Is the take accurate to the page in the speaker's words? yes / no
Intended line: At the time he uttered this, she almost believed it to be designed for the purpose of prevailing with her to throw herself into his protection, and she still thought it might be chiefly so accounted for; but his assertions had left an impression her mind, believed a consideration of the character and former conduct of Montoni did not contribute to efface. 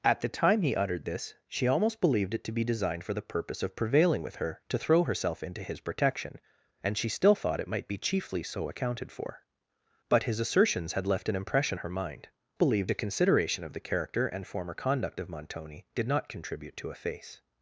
yes